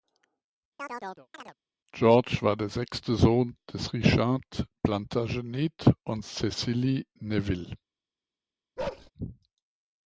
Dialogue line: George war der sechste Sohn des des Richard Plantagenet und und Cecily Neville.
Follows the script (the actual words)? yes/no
no